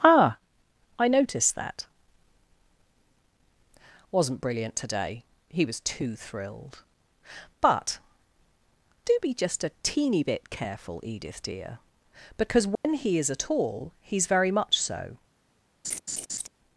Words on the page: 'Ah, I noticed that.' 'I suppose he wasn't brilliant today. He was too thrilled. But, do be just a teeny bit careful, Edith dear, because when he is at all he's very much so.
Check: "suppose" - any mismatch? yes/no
yes